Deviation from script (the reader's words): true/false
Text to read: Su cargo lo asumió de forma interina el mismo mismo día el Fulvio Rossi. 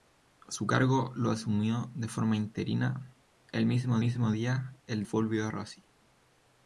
false